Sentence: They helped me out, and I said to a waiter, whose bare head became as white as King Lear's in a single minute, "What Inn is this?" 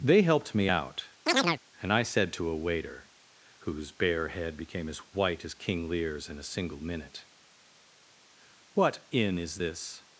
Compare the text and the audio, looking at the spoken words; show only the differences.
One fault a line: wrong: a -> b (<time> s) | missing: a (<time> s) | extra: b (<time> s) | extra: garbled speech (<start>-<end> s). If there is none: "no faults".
no faults